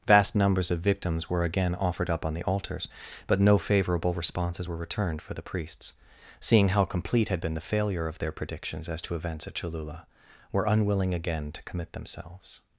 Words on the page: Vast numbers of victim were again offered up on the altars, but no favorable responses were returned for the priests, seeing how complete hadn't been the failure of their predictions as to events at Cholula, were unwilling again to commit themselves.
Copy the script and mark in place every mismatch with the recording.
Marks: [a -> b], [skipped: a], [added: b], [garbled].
Vast numbers of [victim -> victims] were again offered up on the altars, but no favorable responses were returned for the priests, seeing how complete [hadn't -> had] been the failure of their predictions as to events at Cholula, were unwilling again to commit themselves.